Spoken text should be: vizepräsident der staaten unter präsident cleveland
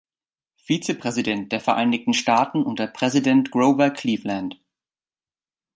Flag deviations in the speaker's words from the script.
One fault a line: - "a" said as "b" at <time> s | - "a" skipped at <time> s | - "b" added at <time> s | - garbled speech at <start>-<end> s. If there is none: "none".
- "vereinigten" added at 1.6 s
- "grover" added at 3.5 s